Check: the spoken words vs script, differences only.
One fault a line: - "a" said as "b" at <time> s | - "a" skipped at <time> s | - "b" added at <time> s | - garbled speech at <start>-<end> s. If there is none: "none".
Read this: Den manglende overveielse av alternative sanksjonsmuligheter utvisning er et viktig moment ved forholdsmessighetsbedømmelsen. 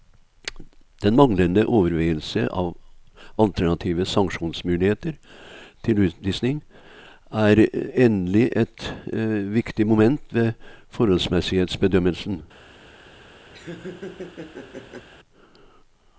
- "til" added at 5.8 s
- "endelig" added at 8.1 s